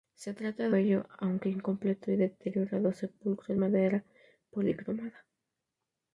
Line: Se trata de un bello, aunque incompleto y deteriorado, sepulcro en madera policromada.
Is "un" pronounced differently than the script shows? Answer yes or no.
yes